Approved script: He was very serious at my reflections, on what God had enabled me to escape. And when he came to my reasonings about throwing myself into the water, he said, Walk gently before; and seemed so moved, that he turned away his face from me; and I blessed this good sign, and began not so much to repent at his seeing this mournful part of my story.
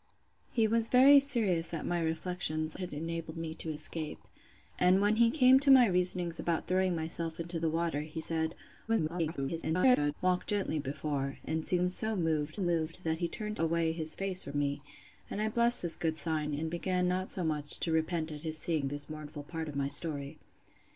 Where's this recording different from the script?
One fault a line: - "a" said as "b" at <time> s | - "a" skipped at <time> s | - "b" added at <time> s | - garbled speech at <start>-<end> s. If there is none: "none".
- "on what God" skipped at 2.8 s
- garbled speech at 8.9-10.1 s
- "moved" added at 12.6 s